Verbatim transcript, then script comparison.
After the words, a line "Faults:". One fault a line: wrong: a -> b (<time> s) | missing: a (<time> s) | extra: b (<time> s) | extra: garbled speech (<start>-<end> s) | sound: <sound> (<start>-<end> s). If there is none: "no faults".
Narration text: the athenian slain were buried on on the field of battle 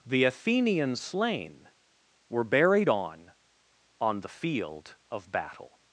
the athenian slain were buried on on the field of battle
Faults:
no faults